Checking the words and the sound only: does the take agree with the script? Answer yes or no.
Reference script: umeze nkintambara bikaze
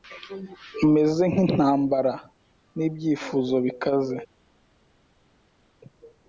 no